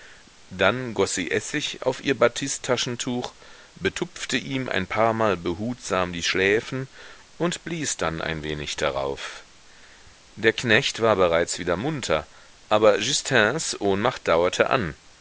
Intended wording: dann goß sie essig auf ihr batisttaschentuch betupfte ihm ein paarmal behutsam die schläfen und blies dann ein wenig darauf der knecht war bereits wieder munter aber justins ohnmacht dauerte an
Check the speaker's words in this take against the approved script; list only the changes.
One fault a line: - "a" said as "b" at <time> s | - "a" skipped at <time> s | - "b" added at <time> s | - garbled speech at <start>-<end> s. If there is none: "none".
none